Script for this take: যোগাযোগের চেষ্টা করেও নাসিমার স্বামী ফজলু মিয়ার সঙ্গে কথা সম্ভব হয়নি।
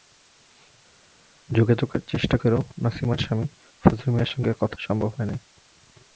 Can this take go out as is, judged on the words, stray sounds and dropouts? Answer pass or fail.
pass